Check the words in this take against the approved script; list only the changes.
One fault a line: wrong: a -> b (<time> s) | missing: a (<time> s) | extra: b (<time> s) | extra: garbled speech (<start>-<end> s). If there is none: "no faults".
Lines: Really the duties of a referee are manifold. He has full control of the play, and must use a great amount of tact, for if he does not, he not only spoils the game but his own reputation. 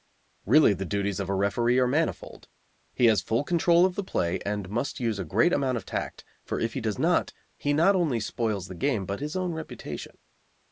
no faults